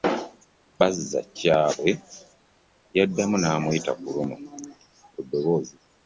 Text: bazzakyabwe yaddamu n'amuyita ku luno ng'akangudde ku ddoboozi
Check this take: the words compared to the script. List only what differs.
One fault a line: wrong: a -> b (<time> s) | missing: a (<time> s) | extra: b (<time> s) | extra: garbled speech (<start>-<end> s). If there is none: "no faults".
missing: ng'akangudde (4.3 s)